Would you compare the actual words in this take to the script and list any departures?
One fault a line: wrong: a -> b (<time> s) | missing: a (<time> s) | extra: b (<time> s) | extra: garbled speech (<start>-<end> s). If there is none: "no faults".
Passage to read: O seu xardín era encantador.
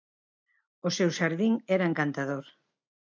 no faults